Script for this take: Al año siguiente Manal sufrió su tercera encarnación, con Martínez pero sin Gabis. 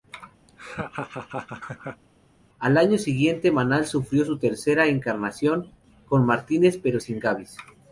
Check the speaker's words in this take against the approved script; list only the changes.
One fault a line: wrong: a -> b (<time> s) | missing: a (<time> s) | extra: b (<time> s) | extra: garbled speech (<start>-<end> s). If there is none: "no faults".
no faults